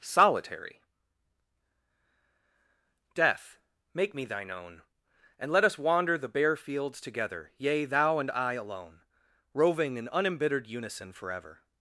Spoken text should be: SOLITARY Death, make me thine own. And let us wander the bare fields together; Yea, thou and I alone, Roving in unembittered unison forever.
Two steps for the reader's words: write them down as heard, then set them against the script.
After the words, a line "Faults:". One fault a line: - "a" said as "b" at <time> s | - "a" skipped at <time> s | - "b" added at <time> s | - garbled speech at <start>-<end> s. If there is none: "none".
SOLITARY Death, make me thine own. And let us wander the bare fields together; Yea, thou and I alone, Roving in unembittered unison forever.
Faults:
none